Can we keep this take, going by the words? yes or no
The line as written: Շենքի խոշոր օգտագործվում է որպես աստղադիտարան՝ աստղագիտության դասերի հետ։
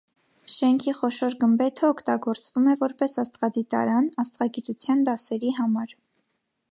no